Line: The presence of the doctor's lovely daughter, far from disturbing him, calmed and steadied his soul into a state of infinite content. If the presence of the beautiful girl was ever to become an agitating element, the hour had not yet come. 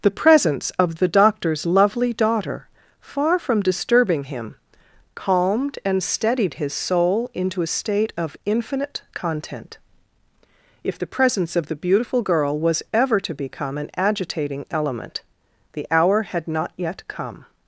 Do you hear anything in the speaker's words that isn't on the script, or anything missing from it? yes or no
no